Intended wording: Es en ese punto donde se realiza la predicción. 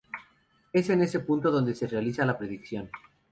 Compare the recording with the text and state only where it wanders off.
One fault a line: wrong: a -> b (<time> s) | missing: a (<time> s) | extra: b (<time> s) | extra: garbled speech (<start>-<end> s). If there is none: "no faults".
no faults